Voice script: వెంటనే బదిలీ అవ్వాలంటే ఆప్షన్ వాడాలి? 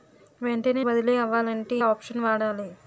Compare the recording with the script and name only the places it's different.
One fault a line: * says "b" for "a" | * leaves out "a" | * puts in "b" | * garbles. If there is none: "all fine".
all fine